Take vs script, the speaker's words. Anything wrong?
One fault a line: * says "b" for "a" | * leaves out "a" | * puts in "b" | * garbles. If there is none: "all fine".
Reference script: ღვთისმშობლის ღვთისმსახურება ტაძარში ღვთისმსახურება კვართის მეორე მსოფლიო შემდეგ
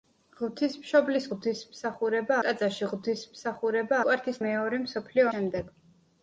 all fine